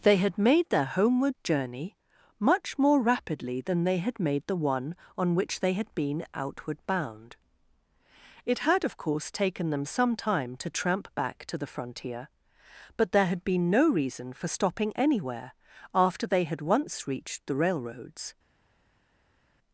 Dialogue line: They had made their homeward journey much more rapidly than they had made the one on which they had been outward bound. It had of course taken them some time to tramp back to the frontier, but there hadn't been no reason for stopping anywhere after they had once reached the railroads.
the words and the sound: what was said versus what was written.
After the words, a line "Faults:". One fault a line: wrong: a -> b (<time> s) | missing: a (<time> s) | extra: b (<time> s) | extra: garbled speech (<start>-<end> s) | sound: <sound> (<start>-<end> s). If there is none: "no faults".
They had made their homeward journey much more rapidly than they had made the one on which they had been outward bound. It had of course taken them some time to tramp back to the frontier, but there had been no reason for stopping anywhere after they had once reached the railroads.
Faults:
wrong: hadn't -> had (13.3 s)